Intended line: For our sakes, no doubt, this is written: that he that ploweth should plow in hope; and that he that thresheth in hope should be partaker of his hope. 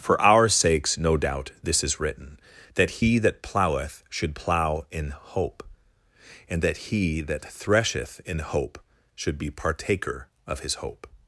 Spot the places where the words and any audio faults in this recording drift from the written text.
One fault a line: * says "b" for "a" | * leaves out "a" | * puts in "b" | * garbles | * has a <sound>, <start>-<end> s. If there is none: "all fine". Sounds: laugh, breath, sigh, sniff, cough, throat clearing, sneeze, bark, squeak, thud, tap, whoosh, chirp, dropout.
all fine